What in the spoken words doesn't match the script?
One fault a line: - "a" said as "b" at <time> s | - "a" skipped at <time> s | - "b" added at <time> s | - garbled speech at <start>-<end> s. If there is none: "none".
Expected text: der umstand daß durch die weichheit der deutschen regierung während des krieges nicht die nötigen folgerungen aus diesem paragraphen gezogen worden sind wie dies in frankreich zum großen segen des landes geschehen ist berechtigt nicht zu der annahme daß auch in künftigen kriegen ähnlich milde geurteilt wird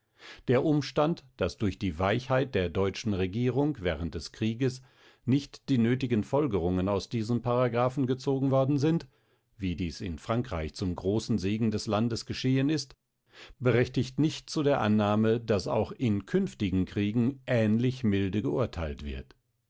none